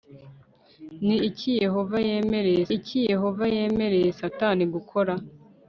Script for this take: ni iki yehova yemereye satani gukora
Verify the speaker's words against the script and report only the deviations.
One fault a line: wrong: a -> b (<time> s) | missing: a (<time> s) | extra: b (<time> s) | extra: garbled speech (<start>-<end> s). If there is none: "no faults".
extra: iki yehova yemereye (2.8 s)